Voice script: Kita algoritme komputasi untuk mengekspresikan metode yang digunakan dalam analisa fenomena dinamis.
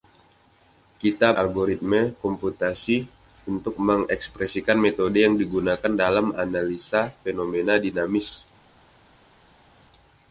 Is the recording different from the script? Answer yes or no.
no